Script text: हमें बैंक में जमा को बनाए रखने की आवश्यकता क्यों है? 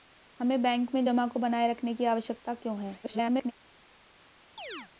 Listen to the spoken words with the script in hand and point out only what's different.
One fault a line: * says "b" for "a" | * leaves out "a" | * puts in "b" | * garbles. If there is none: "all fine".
* garbles